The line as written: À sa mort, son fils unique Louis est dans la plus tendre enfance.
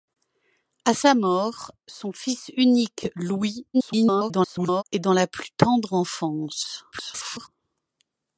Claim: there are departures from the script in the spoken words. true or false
true